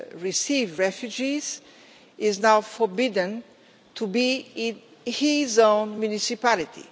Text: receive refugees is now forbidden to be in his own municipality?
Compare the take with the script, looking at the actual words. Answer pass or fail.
pass